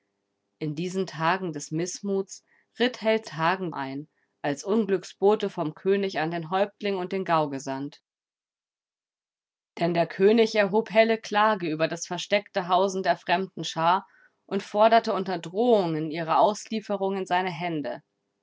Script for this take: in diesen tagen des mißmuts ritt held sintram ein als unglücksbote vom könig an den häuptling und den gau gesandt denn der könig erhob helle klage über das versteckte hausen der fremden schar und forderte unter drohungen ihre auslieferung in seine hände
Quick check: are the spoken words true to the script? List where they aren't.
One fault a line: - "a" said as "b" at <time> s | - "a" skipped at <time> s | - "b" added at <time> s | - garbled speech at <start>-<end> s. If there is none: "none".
- "sintram" said as "tagen" at 3.2 s